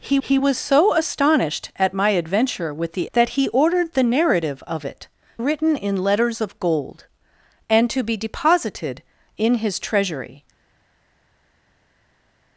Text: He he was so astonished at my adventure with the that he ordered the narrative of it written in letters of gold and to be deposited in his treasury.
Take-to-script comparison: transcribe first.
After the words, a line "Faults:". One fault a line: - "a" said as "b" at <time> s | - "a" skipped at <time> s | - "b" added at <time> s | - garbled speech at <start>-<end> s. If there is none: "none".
He he was so astonished at my adventure with the that he ordered the narrative of it written in letters of gold and to be deposited in his treasury.
Faults:
none